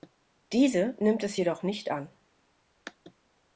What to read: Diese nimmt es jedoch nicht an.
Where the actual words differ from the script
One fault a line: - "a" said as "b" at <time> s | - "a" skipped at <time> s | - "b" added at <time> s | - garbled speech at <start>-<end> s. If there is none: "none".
none